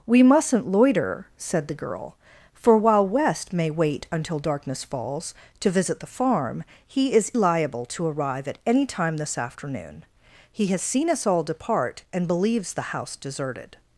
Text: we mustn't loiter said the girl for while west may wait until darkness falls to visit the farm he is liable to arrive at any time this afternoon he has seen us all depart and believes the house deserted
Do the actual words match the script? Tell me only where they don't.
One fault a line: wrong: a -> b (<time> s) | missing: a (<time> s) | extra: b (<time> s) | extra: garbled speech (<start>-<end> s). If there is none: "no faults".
no faults